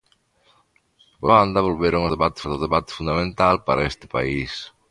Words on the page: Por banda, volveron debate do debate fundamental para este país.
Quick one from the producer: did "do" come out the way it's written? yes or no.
yes